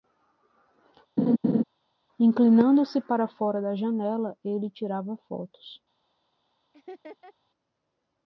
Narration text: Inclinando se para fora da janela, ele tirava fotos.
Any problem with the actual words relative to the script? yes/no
no